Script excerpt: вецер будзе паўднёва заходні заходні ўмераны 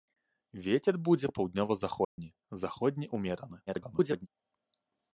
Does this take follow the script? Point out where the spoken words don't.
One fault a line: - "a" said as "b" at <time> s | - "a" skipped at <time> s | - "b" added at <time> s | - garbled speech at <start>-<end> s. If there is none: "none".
- garbled speech at 3.7-4.3 s